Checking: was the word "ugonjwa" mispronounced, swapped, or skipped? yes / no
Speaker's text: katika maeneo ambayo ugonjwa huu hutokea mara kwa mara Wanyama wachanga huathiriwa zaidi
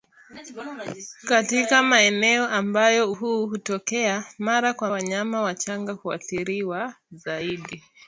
yes